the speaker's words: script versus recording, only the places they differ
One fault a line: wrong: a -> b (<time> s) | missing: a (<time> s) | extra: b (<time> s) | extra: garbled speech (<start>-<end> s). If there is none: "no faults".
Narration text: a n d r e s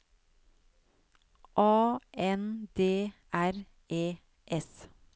no faults